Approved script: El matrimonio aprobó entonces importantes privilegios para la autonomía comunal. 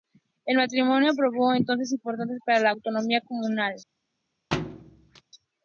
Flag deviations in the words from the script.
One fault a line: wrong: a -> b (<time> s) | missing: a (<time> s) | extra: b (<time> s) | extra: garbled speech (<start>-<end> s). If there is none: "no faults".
missing: privilegios (2.4 s)